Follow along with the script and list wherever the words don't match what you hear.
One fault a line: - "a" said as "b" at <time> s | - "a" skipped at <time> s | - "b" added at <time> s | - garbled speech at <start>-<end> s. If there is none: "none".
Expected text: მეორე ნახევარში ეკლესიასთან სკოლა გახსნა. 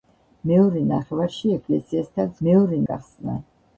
- "სკოლა" said as "მეორე" at 2.5 s